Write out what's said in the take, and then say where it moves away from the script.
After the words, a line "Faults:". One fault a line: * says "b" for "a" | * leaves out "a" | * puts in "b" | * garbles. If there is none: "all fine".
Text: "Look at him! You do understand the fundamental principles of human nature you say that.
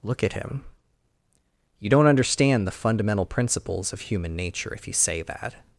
"Look at him! You don't understand the fundamental principles of human nature if you say that.
Faults:
* says "don't" for "do"
* puts in "if"